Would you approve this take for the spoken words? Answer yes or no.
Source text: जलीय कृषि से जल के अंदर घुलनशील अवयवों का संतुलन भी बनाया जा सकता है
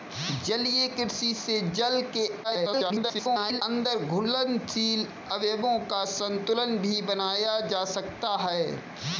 no